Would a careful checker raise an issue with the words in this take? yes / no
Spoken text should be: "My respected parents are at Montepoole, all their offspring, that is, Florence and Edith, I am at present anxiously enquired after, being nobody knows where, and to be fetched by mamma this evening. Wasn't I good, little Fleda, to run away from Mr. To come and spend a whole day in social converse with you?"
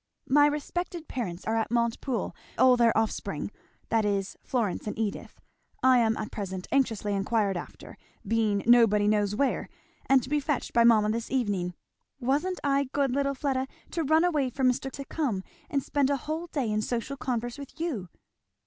no